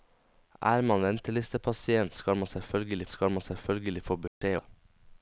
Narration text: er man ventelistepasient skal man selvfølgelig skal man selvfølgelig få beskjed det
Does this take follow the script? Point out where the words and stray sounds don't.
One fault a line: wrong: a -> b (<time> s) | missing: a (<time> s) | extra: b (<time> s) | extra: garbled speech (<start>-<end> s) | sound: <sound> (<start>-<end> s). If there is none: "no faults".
sound: dropout (4.3-4.4 s)